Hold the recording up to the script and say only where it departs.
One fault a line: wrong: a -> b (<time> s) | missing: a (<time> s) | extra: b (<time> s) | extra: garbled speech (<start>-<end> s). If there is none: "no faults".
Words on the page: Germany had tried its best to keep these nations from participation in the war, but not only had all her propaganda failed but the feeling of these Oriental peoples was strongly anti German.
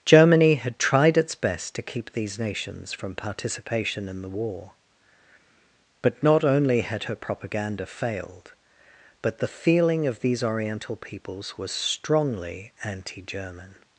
missing: all (7.0 s)